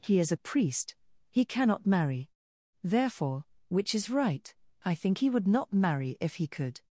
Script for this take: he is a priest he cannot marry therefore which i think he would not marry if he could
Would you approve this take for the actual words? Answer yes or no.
no